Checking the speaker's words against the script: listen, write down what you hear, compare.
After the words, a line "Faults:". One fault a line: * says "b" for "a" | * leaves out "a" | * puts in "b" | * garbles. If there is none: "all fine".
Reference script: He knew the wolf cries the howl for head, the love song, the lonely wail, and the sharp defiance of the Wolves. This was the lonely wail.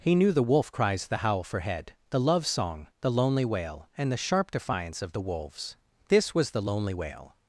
He knew the wolf cries the howl for head, the love song, the lonely wail, and the sharp defiance of the Wolves. This was the lonely wail.
Faults:
all fine